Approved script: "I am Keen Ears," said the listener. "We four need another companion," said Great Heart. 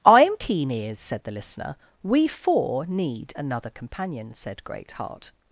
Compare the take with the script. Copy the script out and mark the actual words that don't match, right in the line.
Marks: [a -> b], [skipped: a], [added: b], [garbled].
"I am Keen Ears," said the listener. "We four need another companion," said Great Heart.